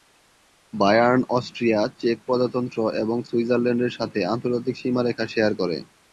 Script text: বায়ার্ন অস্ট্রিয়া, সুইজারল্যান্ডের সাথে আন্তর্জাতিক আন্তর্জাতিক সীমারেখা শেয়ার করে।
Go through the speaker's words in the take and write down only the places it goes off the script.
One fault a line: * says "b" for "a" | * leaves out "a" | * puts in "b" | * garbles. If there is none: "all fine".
* puts in "চেক প্রজাতন্ত্র এবং"
* leaves out "আন্তর্জাতিক"